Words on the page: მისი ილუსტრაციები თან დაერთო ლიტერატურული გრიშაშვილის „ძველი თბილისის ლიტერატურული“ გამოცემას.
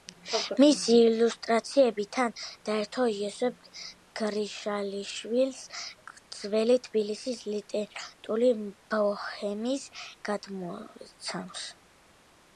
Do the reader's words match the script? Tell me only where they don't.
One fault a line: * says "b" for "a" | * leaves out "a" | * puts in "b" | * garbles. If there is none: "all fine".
* says "იოსებ" for "ლიტერატურული"
* puts in "ბოჰემის"